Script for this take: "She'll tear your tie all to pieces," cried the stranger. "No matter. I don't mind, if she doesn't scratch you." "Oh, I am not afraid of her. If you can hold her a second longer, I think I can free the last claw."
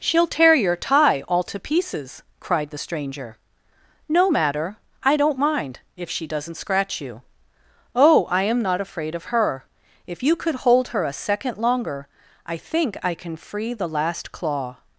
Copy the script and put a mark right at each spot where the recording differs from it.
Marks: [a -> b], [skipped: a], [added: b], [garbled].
"She'll tear your tie all to pieces," cried the stranger. "No matter. I don't mind, if she doesn't scratch you." "Oh, I am not afraid of her. If you [can -> could] hold her a second longer, I think I can free the last claw."